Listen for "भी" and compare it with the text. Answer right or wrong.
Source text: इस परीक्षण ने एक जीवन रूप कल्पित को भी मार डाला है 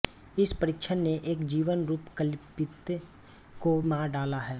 wrong